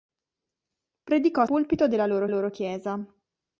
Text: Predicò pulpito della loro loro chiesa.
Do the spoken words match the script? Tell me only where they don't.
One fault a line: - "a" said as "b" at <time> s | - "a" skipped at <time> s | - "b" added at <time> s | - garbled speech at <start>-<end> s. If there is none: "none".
none